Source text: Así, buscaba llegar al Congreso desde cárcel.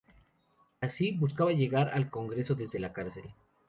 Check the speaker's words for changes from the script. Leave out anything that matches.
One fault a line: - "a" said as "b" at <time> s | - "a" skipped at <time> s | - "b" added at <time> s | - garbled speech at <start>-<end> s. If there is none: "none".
- "la" added at 2.8 s